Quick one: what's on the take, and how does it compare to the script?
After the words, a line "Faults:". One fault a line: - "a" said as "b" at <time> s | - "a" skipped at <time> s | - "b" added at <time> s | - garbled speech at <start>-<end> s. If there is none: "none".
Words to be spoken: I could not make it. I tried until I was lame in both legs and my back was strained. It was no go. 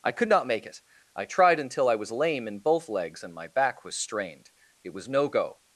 I could not make it. I tried until I was lame in both legs and my back was strained. It was no go.
Faults:
none